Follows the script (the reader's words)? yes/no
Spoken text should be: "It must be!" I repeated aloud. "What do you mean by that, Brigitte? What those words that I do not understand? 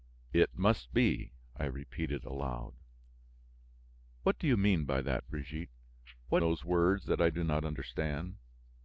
yes